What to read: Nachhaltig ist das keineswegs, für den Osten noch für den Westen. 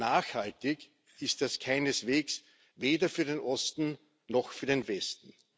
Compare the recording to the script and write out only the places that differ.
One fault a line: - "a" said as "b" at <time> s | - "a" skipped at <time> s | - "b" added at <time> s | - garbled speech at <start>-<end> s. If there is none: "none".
- "weder" added at 2.8 s